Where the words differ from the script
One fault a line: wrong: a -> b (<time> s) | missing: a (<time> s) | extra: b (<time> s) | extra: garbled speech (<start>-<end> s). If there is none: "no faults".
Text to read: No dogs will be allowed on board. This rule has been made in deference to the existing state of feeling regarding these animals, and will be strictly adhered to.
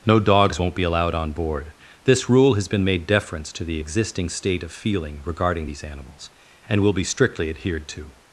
wrong: will -> won't (0.6 s)
missing: in (3.0 s)